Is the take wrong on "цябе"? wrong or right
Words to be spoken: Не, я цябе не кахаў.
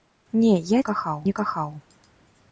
wrong